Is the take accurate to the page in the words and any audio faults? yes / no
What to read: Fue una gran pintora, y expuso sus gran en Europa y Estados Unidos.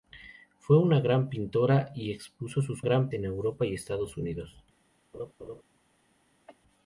no